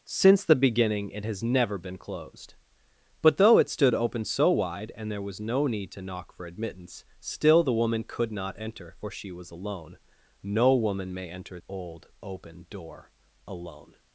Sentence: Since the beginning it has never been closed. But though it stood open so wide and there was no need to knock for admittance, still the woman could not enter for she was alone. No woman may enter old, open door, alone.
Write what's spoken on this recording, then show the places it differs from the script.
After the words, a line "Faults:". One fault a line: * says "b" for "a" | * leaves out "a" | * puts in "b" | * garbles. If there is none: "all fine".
Since the beginning it has never been closed. But though it stood open so wide and there was no need to knock for admittance, still the woman could not enter for she was alone. No woman may enter old, open door, alone.
Faults:
all fine